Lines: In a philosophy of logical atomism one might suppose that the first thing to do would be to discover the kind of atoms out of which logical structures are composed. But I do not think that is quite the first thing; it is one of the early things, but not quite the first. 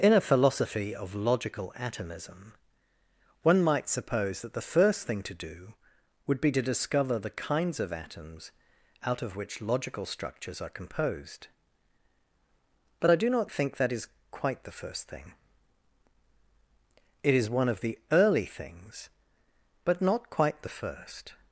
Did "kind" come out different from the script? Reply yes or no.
yes